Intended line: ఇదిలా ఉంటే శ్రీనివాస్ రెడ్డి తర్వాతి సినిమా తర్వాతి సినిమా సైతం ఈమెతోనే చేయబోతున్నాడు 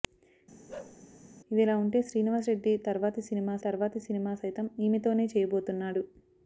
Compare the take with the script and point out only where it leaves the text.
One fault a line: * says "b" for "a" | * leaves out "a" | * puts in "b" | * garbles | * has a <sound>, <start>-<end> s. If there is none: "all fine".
* has a bark, 0.7-1.0 s